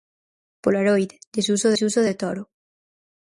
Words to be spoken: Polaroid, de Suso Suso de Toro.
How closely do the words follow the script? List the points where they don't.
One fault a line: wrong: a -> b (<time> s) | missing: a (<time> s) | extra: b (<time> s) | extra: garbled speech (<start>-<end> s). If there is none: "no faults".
no faults